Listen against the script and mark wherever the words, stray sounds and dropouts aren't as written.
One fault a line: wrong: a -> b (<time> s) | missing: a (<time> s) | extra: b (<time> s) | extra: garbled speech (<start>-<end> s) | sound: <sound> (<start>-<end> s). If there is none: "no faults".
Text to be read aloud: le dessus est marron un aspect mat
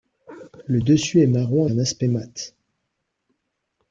no faults